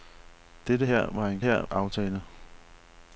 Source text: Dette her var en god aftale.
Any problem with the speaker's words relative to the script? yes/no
yes